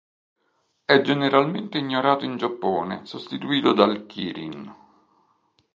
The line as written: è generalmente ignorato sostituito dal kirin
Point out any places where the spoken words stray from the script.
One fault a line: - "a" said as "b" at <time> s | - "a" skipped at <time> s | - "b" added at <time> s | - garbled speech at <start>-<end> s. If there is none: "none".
- "in giappone" added at 2.2 s